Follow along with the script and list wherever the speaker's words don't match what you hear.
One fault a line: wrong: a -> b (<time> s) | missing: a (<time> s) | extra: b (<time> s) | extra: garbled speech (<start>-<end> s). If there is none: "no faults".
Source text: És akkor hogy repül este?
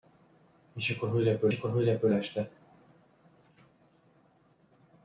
extra: akkor hogy repül (1.5 s)